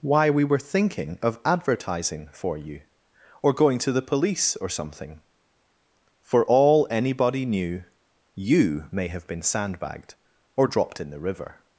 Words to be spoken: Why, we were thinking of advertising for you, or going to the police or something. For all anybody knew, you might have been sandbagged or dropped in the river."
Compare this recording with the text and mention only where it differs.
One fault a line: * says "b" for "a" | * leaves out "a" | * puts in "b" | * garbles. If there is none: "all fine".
* says "may" for "might"